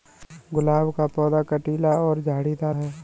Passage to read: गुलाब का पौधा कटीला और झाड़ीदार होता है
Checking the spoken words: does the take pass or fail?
fail